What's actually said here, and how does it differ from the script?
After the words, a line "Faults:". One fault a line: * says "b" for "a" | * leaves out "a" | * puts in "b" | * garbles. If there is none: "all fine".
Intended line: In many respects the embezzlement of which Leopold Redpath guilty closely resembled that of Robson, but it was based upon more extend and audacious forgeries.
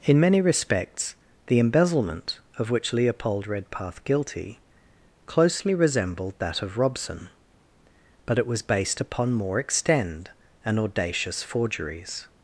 In many respects the embezzlement of which Leopold Redpath guilty closely resembled that of Robson, but it was based upon more extend and audacious forgeries.
Faults:
all fine